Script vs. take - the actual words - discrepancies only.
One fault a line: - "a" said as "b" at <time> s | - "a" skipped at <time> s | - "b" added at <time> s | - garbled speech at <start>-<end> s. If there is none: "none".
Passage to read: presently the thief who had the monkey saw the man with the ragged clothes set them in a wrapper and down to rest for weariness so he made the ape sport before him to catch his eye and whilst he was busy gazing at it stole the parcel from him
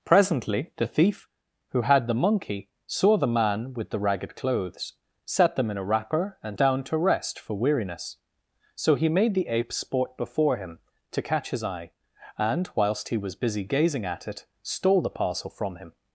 none